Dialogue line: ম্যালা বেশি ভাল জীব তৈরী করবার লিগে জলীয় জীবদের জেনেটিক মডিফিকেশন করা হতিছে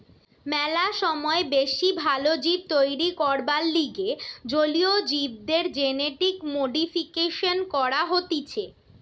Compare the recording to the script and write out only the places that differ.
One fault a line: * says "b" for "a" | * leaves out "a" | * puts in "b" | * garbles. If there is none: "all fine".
* puts in "সময়"